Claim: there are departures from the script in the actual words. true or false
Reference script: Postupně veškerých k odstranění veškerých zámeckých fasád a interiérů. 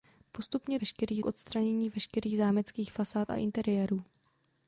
false